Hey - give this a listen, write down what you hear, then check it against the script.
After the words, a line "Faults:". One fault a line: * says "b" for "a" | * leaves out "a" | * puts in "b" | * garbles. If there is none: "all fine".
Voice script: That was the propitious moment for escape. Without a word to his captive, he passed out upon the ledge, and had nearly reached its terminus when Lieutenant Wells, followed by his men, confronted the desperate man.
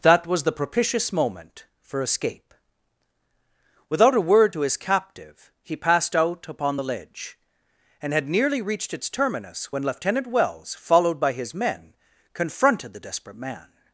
That was the propitious moment for escape. Without a word to his captive, he passed out upon the ledge, and had nearly reached its terminus when Lieutenant Wells, followed by his men, confronted the desperate man.
Faults:
all fine